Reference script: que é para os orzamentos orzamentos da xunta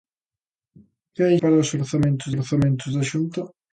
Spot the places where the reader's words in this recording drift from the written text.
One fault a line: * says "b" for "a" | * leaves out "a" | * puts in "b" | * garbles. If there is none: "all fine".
all fine